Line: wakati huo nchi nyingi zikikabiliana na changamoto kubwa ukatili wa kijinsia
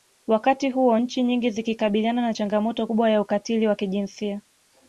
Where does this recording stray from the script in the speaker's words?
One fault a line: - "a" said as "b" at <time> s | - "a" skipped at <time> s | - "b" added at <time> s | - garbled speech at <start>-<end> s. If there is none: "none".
- "ya" added at 3.1 s